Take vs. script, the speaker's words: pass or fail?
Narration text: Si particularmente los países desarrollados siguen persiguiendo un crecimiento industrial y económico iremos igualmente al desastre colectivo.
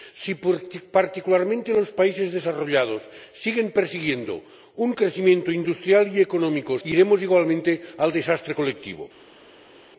pass